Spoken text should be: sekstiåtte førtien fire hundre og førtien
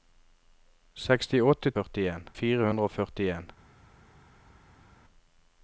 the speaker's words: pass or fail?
pass